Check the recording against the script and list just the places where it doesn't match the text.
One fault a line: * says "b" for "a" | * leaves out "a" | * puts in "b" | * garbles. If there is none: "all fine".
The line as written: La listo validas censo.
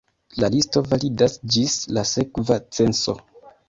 * puts in "ĝis la sekva"